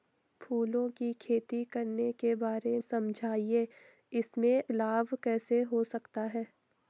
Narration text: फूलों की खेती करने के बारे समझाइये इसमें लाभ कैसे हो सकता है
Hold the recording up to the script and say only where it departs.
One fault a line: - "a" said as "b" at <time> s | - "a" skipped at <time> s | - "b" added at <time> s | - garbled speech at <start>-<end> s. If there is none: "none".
none